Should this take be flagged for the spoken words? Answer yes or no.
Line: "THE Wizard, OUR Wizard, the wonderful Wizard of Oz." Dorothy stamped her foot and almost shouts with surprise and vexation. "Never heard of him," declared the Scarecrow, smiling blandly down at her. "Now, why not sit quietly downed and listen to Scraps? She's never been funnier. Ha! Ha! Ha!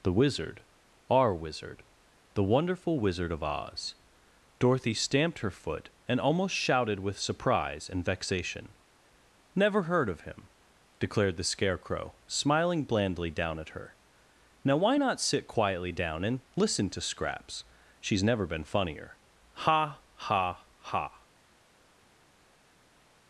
yes